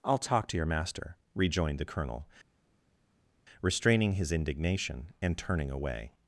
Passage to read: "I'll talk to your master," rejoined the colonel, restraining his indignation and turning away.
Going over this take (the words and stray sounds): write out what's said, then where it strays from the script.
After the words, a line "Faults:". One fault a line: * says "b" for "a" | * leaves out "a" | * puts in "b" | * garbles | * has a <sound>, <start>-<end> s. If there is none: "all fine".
"I'll talk to your master," rejoined the colonel, restraining his indignation and turning away.
Faults:
all fine